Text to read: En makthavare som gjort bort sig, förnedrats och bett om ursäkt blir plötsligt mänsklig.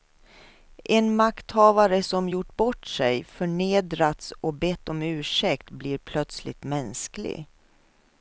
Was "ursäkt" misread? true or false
false